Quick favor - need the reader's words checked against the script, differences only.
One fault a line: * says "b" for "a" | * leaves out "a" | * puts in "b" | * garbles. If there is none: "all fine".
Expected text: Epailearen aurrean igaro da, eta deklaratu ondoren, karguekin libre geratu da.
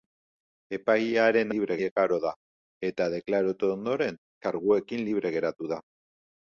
* says "libre" for "aurrean"